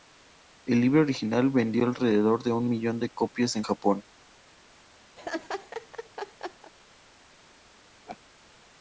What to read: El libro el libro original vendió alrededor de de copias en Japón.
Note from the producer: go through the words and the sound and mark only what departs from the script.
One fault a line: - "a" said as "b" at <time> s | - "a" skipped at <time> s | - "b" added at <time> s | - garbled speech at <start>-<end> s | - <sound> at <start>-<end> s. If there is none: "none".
- "el libro" skipped at 1.0 s
- "un millón" added at 2.5 s
- laugh at 5.2-6.7 s
- laugh at 8.1-8.2 s